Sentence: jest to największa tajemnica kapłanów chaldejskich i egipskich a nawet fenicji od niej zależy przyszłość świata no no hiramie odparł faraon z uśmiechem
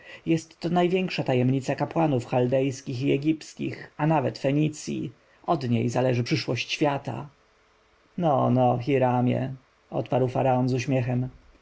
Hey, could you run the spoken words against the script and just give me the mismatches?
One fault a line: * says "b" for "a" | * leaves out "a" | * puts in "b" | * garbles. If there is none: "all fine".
all fine